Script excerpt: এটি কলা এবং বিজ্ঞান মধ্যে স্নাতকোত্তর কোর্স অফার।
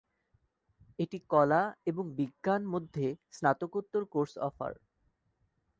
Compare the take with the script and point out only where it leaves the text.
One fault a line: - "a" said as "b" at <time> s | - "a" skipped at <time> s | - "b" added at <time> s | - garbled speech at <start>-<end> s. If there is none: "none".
none